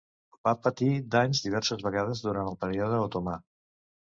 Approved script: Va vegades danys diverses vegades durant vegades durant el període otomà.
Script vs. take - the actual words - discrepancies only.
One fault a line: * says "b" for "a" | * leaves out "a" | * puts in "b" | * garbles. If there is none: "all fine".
* says "patir" for "vegades"
* leaves out "vegades durant"